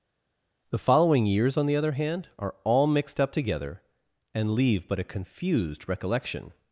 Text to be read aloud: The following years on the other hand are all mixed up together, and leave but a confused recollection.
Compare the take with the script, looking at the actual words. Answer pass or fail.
pass